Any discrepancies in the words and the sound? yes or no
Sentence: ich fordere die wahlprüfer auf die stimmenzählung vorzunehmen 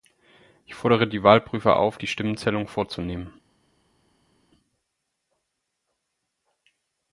no